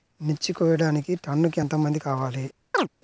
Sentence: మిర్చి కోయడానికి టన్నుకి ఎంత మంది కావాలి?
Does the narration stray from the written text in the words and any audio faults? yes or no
yes